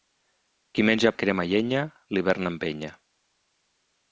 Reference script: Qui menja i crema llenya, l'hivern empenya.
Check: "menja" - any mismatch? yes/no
no